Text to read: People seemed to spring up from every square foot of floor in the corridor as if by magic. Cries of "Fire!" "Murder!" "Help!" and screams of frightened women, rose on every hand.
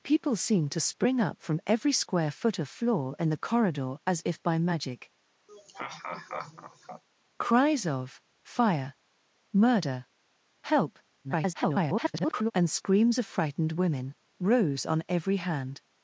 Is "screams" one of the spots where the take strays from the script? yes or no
no